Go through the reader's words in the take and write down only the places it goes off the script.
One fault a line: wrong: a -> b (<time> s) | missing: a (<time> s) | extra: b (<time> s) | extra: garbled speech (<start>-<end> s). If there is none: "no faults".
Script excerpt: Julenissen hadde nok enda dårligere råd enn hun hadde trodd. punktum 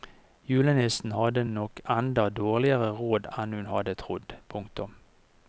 no faults